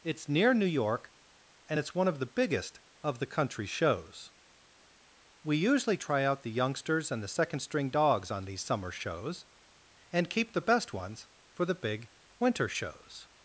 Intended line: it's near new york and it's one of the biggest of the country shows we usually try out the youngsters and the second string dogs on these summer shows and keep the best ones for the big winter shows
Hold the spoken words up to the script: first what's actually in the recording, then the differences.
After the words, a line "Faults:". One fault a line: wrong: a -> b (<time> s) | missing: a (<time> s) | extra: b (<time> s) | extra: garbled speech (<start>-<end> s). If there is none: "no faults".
it's near new york and it's one of the biggest of the country shows we usually try out the youngsters and the second string dogs on these summer shows and keep the best ones for the big winter shows
Faults:
no faults